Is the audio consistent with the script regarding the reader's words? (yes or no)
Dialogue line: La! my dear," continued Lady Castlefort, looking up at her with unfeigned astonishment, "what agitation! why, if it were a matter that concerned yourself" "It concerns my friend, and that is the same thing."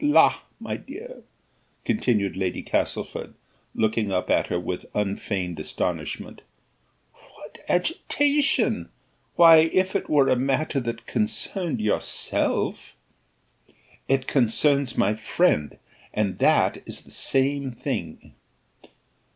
yes